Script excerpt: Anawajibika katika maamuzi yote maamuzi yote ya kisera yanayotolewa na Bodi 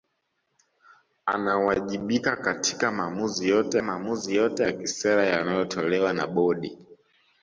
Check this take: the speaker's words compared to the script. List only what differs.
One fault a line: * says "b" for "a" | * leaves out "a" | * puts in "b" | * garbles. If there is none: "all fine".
all fine